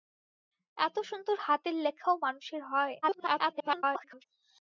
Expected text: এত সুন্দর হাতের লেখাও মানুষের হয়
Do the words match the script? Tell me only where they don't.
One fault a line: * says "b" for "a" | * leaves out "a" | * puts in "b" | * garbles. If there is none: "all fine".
* garbles